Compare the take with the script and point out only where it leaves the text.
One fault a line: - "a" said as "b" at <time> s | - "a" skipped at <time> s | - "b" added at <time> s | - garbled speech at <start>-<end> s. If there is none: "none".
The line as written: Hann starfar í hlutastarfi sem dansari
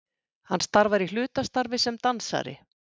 none